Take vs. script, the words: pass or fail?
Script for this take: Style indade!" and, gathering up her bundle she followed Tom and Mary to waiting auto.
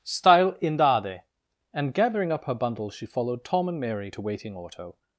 pass